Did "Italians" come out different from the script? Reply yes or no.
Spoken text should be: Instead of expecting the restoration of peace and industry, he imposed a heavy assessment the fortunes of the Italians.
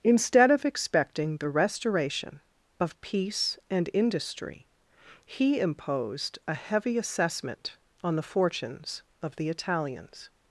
no